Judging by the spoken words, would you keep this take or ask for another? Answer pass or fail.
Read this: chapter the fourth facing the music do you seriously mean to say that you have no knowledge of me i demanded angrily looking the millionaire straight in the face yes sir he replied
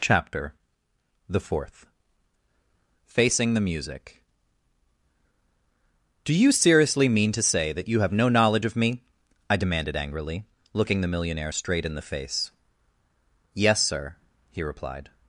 pass